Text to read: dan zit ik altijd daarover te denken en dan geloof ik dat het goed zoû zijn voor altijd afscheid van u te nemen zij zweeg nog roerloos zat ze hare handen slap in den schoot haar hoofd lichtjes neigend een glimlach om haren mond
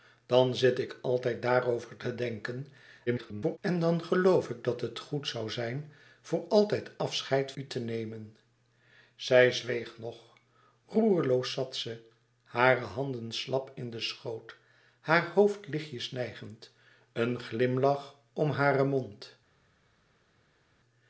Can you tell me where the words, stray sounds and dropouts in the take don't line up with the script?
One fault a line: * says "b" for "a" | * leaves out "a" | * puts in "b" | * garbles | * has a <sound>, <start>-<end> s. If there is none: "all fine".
* garbles
* leaves out "van"